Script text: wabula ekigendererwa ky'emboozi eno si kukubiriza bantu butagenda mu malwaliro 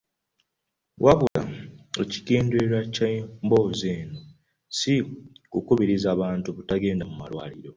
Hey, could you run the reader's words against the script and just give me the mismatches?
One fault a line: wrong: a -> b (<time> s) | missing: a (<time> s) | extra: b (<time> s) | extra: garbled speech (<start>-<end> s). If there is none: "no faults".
no faults